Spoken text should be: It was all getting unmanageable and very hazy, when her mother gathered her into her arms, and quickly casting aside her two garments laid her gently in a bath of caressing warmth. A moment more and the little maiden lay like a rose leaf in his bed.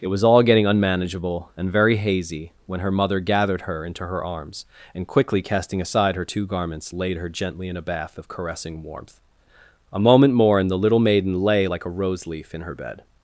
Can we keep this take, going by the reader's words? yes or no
no